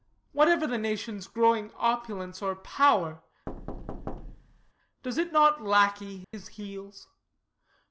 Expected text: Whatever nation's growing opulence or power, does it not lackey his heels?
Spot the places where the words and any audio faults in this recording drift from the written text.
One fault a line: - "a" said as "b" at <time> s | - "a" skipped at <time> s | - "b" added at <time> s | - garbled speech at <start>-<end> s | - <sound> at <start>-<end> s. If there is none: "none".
- "the" added at 0.7 s
- thud at 3.5-4.7 s
- dropout at 6.2-6.3 s